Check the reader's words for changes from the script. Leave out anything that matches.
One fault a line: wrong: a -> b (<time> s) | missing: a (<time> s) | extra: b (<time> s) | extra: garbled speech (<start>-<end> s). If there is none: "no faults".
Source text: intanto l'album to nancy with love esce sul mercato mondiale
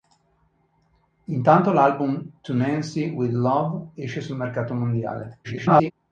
extra: garbled speech (5.4-5.9 s)